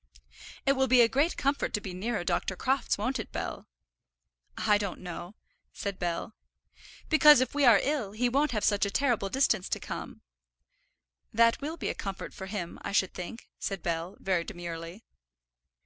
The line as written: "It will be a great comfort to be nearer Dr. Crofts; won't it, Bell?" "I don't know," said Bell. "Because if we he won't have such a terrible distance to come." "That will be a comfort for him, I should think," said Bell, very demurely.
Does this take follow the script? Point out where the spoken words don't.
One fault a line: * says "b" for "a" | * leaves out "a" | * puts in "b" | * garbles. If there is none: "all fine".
* puts in "are ill"